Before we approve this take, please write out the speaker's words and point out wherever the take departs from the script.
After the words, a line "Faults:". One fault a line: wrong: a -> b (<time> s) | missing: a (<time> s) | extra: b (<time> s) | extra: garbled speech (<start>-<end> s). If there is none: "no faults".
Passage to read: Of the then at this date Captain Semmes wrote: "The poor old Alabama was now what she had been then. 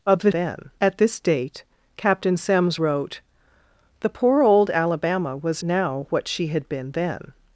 Of the then at this date Captain Semmes wrote: "The poor old Alabama was now what she had been then.
Faults:
no faults